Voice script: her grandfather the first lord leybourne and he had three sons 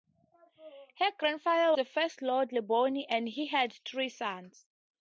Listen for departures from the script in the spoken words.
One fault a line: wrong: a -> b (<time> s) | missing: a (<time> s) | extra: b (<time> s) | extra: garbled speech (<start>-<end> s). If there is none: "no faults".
no faults